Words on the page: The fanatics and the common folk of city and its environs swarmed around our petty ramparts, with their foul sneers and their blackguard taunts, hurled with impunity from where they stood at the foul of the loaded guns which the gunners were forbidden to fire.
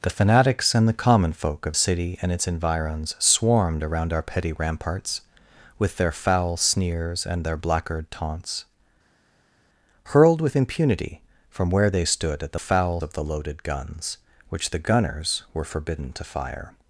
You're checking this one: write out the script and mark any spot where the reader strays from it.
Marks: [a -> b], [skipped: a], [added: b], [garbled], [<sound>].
The fanatics and the common folk of city and its environs swarmed around our petty ramparts, with their foul sneers and their blackguard taunts, hurled with impunity from where they stood at the foul of the loaded guns which the gunners were forbidden to fire.